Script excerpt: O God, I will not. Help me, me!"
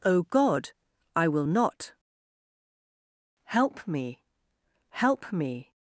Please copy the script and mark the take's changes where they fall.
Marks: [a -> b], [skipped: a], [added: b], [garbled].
O God, I will not. Help me, [added: help] me!"